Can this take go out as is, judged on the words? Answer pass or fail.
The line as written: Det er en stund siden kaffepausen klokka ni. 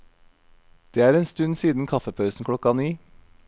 pass